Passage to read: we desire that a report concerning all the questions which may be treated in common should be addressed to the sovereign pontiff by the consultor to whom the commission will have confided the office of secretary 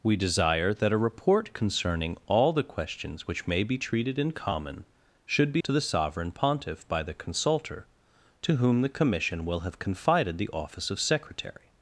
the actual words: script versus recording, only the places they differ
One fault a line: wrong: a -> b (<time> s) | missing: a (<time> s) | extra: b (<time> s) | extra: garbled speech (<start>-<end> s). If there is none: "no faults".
missing: addressed (5.6 s)